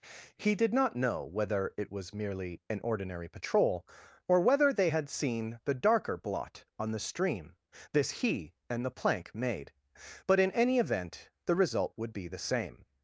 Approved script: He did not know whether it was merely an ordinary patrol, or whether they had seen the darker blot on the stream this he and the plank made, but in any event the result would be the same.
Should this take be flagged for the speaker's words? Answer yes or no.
no